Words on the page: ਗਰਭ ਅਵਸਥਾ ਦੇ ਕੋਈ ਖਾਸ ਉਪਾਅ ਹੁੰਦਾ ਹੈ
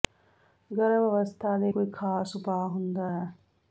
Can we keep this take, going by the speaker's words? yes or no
yes